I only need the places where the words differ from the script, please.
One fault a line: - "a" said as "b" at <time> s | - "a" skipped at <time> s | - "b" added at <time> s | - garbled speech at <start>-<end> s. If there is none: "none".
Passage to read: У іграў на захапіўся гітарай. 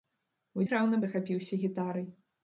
none